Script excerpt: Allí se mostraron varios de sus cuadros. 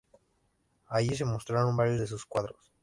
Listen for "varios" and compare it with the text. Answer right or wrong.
right